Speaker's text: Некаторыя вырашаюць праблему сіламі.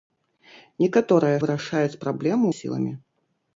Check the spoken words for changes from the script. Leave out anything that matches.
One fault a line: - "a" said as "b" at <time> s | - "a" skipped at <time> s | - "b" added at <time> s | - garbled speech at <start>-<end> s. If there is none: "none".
none